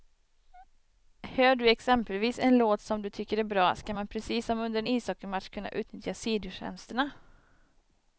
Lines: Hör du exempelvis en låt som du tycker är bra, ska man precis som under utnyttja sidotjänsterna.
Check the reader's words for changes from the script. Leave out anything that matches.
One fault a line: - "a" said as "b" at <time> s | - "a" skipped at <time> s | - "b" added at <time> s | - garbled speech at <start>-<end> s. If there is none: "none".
- "en ishockeymatch kunna" added at 4.8 s